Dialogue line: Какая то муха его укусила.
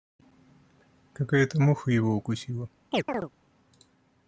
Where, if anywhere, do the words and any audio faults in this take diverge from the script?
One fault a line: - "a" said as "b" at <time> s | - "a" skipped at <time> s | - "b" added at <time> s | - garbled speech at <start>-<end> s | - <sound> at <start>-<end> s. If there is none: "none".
- chirp at 2.9-3.3 s